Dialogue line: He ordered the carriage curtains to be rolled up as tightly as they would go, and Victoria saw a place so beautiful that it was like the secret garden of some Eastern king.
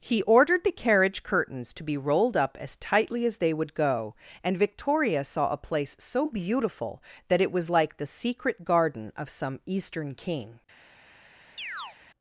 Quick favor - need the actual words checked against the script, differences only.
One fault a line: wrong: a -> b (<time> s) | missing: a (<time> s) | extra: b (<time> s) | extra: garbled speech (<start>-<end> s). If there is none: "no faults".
no faults